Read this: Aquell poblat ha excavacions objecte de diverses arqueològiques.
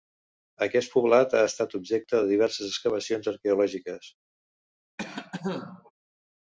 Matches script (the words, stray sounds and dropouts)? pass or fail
fail